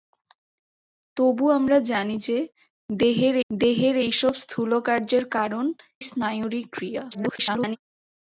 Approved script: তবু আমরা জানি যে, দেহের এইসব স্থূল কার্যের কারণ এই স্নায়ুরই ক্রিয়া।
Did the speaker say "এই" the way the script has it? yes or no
no